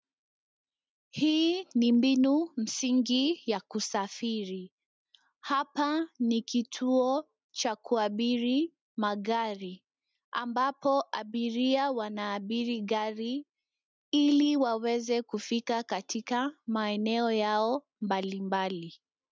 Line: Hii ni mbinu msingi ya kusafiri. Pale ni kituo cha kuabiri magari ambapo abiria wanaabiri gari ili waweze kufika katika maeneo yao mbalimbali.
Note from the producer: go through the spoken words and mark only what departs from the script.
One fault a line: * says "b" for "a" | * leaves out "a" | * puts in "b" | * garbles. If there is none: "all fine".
* says "Hapa" for "Pale"